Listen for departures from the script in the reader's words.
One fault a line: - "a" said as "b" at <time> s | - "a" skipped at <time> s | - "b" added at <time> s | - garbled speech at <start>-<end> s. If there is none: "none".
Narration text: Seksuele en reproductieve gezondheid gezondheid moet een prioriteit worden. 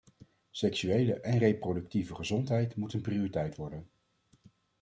- "gezondheid" skipped at 2.8 s